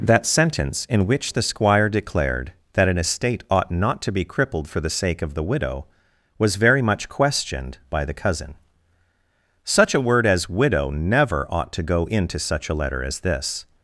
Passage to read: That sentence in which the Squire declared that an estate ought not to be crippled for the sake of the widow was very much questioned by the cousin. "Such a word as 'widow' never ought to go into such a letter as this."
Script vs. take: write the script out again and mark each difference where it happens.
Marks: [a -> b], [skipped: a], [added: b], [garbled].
That sentence in which the Squire declared that an estate ought not to be crippled for the sake of the widow was very much questioned by the cousin. "Such a word as 'widow' never ought to go into such a letter as this."